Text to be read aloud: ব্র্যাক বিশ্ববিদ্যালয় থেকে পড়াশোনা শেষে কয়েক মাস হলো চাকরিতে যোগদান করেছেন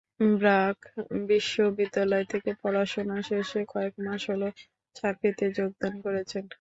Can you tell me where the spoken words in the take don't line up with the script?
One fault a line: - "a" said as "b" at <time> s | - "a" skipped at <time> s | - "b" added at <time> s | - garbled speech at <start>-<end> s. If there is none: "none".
none